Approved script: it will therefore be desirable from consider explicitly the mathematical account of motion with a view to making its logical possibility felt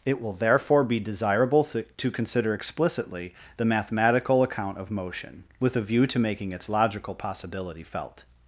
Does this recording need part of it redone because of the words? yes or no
yes